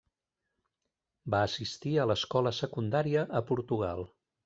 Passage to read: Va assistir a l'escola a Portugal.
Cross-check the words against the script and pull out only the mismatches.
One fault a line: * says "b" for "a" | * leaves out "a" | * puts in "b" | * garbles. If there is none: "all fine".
* puts in "secundària"